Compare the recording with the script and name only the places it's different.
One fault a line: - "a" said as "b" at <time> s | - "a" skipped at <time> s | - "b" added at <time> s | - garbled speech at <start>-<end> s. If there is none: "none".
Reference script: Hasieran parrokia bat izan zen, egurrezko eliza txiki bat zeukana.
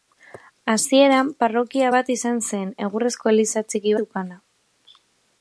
- "bat" skipped at 4.0 s